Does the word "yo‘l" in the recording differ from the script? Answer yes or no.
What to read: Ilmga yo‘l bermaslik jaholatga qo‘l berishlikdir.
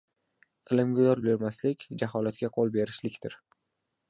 no